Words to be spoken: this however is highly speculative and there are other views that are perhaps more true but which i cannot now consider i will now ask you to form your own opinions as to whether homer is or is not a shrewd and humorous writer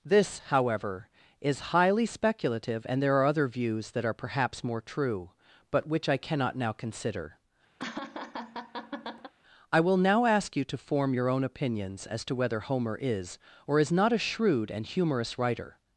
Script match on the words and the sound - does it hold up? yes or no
no